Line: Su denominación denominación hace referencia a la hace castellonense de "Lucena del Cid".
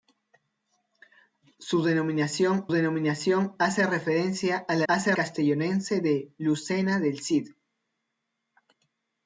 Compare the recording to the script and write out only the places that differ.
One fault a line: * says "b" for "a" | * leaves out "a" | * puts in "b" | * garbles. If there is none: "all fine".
all fine